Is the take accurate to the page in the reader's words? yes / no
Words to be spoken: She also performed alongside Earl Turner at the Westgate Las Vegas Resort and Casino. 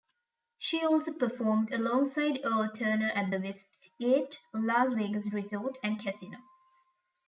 yes